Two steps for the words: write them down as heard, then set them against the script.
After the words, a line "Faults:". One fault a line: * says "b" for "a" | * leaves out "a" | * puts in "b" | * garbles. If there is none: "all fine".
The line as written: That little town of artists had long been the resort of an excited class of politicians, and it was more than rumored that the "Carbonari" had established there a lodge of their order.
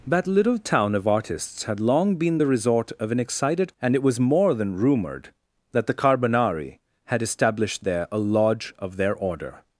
That little town of artists had long been the resort of an excited and it was more than rumored that the "Carbonari" had established there a lodge of their order.
Faults:
* leaves out "class of politicians"